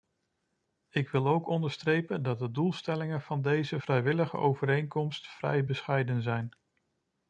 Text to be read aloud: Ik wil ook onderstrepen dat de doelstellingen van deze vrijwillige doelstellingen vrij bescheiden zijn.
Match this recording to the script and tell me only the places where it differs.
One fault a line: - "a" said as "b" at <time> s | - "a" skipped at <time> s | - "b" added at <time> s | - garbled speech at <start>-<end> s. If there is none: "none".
- "doelstellingen" said as "overeenkomst" at 4.4 s